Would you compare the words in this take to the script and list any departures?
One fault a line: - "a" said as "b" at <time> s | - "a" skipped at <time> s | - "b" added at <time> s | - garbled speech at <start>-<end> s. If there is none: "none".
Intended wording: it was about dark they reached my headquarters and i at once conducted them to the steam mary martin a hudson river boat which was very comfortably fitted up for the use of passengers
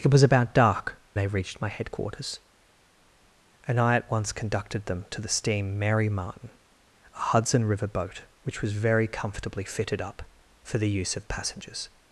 none